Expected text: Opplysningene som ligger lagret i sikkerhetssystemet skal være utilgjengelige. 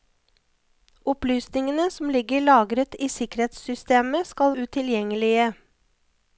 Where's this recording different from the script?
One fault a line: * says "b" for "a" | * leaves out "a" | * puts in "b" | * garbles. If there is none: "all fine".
* leaves out "være"